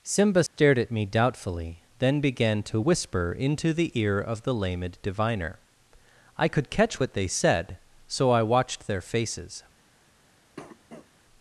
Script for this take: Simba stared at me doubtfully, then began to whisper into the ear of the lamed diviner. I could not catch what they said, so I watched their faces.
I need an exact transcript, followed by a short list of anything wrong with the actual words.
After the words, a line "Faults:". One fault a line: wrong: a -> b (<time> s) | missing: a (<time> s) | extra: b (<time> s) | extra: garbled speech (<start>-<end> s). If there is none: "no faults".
Simba stared at me doubtfully, then began to whisper into the ear of the lamed diviner. I could catch what they said, so I watched their faces.
Faults:
missing: not (6.7 s)